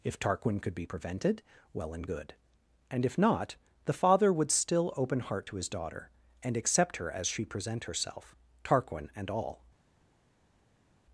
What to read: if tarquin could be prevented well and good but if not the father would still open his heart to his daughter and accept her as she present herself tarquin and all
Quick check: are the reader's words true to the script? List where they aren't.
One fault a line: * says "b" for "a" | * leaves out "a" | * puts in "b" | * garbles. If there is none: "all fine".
* says "and" for "but"
* leaves out "his"